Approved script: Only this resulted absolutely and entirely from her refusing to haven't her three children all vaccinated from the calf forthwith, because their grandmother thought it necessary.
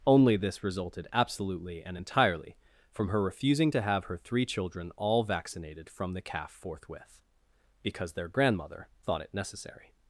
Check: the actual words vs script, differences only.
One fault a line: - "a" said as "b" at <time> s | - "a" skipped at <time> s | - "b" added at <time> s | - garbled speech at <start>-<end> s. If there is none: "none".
- "haven't" said as "have" at 3.8 s